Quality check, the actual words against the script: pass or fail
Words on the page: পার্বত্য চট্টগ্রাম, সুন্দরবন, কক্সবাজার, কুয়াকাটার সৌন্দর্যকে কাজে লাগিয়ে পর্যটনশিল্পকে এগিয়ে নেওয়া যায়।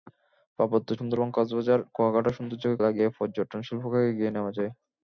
fail